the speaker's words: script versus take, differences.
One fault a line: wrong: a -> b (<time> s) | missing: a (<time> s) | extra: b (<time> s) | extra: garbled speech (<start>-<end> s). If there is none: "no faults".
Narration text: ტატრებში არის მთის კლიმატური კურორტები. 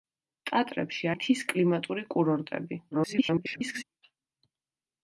missing: არის (1.1 s)
extra: garbled speech (2.9-3.8 s)